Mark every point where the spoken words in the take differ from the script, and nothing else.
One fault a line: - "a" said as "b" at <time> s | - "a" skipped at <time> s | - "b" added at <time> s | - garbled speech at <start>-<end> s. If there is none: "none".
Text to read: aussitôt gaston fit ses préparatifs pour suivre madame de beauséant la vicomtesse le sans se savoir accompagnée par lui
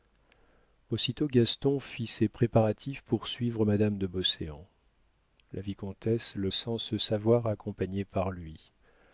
none